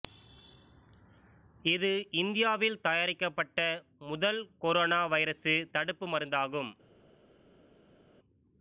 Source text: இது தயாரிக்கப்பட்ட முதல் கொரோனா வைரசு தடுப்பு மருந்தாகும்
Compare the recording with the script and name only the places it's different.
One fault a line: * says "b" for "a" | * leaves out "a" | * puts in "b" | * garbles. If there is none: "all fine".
* puts in "இந்தியாவில்"